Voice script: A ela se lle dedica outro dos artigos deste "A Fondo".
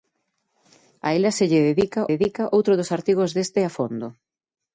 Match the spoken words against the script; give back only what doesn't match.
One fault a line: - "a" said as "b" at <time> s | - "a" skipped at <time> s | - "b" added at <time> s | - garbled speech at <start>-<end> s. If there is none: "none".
- "dedica" added at 2.1 s